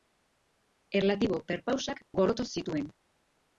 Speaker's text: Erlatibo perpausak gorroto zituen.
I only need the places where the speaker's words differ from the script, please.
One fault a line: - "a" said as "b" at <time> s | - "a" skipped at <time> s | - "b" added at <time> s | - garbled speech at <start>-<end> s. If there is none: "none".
none